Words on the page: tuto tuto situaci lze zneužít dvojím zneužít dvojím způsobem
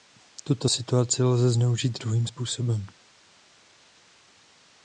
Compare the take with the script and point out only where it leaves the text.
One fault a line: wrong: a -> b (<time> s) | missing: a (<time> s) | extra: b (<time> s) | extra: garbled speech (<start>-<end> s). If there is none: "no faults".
missing: tuto (0.7 s)
missing: zneužít dvojím (2.3 s)